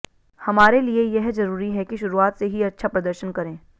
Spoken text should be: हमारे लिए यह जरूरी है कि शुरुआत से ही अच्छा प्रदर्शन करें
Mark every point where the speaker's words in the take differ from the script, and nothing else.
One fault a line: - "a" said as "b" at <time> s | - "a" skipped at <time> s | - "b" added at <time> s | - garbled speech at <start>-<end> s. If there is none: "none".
none